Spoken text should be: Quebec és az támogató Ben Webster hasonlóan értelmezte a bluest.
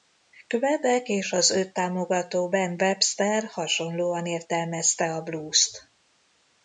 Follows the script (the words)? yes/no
no